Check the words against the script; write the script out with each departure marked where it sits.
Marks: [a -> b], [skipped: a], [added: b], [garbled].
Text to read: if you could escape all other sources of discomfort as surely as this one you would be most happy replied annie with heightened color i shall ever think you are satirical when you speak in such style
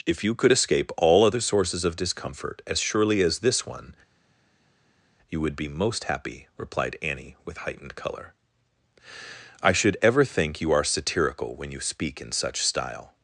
if you could escape all other sources of discomfort as surely as this one you would be most happy replied annie with heightened color i [shall -> should] ever think you are satirical when you speak in such style